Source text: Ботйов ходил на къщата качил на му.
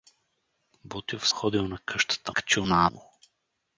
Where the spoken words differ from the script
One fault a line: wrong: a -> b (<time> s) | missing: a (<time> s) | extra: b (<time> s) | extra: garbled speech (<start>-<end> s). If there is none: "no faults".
no faults